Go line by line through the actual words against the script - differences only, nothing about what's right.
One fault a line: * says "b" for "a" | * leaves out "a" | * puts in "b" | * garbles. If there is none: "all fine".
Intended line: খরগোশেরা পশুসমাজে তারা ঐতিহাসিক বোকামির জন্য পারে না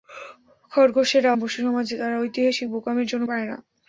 all fine